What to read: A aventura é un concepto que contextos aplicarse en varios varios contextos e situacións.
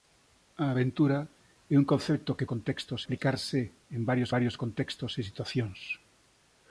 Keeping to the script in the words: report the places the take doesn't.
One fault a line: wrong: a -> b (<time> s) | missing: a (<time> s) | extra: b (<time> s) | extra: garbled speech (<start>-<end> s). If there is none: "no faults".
no faults